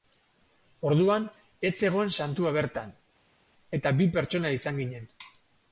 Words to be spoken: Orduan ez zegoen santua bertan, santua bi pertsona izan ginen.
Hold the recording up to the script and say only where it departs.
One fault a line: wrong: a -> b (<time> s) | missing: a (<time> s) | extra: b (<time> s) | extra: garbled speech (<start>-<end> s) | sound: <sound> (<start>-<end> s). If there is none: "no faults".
wrong: santua -> eta (3.8 s)